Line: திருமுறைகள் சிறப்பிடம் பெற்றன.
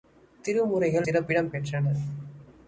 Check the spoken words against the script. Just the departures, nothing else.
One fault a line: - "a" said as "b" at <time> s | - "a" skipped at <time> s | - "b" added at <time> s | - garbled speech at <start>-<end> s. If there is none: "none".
none